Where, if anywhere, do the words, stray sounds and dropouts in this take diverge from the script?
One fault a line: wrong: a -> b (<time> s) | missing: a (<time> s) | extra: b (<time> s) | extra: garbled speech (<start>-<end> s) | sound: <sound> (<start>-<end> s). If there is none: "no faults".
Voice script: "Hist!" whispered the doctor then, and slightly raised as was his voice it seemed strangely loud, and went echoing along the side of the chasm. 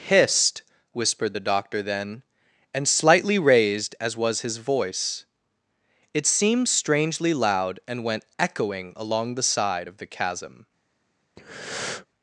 sound: breath (11.4-12.1 s)